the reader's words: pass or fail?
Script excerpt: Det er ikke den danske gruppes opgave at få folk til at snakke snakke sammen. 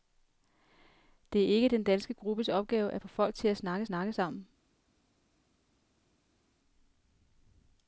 pass